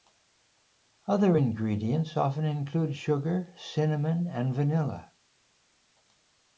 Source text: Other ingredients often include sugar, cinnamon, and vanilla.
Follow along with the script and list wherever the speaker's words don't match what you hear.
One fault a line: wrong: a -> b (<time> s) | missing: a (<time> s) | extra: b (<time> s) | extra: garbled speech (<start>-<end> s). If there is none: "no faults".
no faults